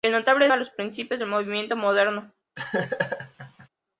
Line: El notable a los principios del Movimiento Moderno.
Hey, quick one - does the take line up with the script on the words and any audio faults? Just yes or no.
no